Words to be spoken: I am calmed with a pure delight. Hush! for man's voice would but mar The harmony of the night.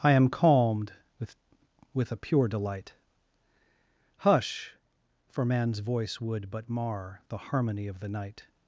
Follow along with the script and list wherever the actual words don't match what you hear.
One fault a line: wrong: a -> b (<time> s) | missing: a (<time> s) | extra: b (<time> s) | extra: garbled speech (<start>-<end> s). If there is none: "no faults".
extra: with (1.9 s)